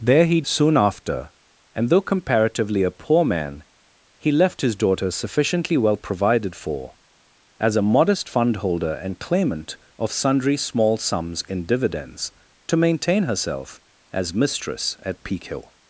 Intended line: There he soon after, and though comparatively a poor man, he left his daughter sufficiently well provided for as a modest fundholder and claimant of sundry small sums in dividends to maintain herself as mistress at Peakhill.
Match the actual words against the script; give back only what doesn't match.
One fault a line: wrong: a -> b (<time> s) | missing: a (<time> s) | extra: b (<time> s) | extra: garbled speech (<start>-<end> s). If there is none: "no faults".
no faults